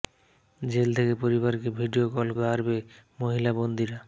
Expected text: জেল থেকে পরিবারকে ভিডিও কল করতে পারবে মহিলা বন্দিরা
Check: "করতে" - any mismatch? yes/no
yes